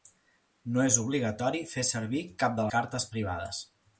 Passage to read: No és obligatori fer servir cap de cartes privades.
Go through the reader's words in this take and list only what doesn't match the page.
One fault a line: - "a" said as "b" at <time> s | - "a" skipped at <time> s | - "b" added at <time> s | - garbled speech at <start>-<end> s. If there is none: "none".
none